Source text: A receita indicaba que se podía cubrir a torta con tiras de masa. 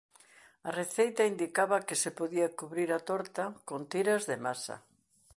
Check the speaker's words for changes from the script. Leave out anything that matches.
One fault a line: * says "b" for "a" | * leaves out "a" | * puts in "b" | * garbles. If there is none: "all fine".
all fine